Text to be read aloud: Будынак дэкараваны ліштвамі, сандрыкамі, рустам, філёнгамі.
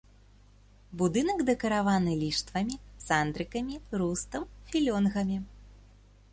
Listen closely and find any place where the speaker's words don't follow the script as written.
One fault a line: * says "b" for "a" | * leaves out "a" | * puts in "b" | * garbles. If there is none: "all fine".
all fine